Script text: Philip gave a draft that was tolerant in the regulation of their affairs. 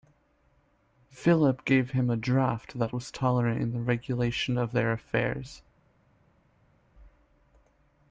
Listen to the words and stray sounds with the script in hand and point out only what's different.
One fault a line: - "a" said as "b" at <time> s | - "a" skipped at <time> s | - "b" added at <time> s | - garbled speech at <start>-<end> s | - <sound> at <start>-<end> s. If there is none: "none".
- "him" added at 1.9 s